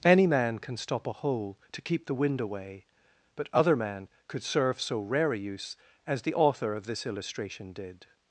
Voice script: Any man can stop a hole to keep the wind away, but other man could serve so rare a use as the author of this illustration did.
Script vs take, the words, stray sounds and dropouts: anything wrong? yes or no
no